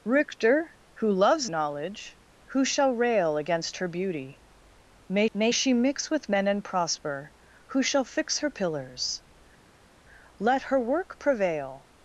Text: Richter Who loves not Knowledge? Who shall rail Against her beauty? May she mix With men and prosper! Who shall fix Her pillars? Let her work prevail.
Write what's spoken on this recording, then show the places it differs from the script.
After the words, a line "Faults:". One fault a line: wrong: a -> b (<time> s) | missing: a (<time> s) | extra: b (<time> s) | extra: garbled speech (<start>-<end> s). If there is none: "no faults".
Richter Who loves Knowledge? Who shall rail Against her beauty? May may she mix With men and prosper! Who shall fix Her pillars? Let her work prevail.
Faults:
missing: not (1.5 s)
extra: may (5.3 s)